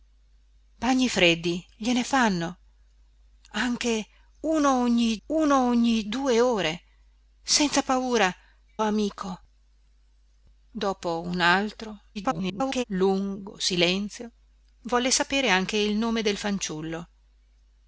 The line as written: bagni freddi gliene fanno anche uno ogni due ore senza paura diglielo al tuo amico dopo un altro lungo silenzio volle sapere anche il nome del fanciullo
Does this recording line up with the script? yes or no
no